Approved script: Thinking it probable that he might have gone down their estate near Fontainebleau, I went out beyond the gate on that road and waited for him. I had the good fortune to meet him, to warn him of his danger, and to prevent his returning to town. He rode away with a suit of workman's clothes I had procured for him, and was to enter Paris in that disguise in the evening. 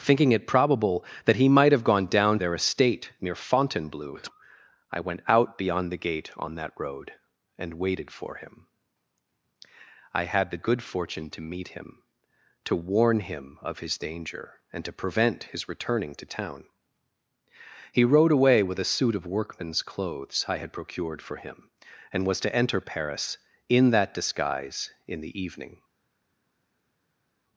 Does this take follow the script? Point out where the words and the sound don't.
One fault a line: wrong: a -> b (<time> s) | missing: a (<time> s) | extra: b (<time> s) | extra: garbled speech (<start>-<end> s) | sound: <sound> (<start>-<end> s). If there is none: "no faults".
no faults